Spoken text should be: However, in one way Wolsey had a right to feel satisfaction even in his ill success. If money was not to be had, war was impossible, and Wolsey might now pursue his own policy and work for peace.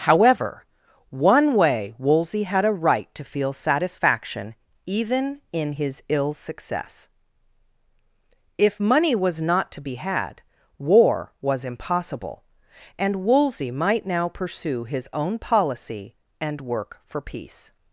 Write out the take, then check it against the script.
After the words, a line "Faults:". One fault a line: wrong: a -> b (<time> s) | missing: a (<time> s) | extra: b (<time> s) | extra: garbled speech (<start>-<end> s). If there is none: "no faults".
However, one way Wolsey had a right to feel satisfaction even in his ill success. If money was not to be had, war was impossible, and Wolsey might now pursue his own policy and work for peace.
Faults:
missing: in (0.7 s)